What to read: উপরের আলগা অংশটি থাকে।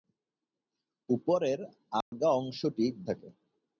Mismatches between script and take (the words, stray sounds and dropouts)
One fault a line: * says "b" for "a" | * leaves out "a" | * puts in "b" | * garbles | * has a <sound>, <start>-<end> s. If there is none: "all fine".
* has a dropout, 2.0-2.1 s